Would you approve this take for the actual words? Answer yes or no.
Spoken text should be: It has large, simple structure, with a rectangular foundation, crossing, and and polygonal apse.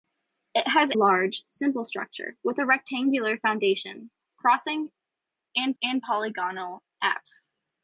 yes